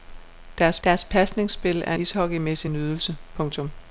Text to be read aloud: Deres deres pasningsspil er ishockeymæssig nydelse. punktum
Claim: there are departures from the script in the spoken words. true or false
false